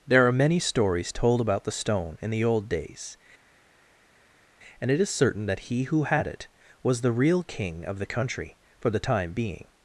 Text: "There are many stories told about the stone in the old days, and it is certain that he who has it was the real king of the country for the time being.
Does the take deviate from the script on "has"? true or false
true